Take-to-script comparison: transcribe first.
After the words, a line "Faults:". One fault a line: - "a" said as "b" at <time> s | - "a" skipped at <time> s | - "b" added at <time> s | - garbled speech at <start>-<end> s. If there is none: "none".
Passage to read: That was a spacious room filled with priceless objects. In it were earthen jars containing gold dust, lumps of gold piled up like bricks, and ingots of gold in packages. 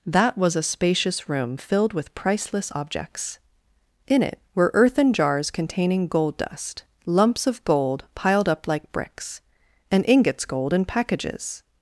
That was a spacious room filled with priceless objects. In it were earthen jars containing gold dust, lumps of gold piled up like bricks, and ingots gold in packages.
Faults:
- "of" skipped at 10.5 s